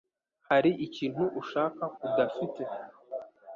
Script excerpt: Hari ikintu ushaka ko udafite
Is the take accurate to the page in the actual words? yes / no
no